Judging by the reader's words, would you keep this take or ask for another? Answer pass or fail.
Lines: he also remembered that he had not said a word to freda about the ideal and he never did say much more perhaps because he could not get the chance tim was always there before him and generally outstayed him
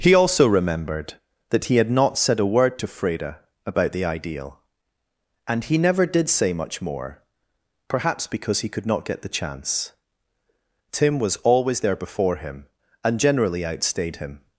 pass